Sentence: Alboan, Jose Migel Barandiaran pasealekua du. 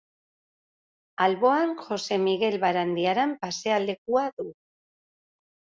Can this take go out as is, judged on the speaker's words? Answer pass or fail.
pass